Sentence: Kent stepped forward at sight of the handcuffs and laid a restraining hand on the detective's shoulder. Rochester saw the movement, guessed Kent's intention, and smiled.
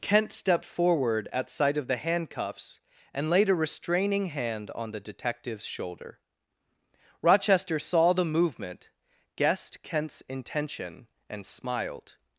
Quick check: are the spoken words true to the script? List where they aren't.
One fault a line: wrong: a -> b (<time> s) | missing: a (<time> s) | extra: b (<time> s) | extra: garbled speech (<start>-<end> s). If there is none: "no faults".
no faults